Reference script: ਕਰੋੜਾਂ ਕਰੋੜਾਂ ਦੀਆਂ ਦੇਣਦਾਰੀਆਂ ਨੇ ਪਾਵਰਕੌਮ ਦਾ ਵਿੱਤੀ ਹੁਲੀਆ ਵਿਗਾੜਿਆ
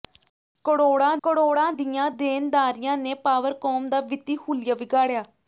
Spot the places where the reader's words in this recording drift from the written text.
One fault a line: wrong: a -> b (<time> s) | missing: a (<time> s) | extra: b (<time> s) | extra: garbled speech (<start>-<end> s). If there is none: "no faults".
no faults